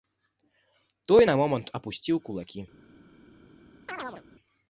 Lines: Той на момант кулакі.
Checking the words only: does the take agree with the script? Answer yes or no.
no